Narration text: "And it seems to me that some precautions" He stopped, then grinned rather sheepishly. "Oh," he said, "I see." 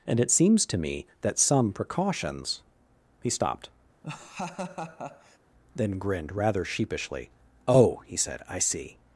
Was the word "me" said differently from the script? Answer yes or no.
no